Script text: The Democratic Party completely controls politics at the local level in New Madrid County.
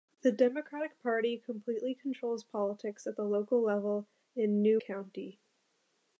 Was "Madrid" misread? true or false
true